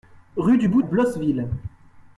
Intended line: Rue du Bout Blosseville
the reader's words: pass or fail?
pass